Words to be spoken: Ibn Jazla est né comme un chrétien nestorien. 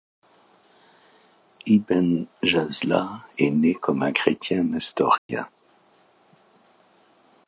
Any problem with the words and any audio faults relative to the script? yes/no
yes